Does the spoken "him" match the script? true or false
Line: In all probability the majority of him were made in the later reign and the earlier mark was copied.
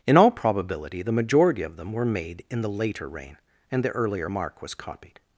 false